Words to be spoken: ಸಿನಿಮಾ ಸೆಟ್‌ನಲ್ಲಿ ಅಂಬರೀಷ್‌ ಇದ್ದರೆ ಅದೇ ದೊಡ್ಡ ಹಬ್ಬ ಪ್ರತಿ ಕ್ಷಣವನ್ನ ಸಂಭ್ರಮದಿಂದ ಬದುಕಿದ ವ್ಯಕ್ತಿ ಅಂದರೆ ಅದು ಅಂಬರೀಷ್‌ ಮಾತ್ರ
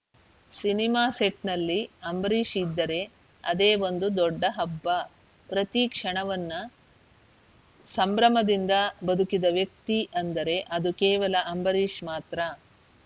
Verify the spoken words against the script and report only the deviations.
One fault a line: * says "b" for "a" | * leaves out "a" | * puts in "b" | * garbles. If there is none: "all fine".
* puts in "ಒಂದು"
* puts in "ಕೇವಲ"